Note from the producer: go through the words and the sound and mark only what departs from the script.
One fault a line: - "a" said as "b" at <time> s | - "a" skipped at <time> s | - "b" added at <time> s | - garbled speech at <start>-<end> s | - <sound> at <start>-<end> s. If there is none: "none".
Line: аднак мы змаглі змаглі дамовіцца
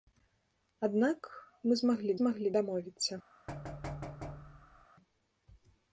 - thud at 3.5-4.9 s